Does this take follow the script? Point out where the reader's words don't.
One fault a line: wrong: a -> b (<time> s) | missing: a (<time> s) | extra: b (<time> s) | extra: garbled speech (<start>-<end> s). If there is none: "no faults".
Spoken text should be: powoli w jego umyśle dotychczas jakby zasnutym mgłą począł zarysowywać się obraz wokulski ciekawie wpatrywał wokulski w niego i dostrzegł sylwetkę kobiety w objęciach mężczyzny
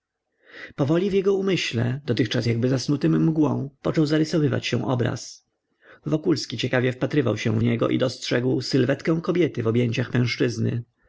wrong: wokulski -> się (7.4 s)